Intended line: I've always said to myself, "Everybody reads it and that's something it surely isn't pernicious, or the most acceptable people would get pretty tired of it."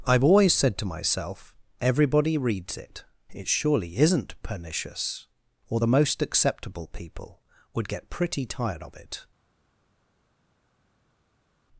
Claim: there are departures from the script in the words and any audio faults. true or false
true